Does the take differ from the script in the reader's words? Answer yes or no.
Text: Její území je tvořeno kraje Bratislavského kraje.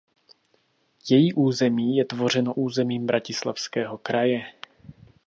yes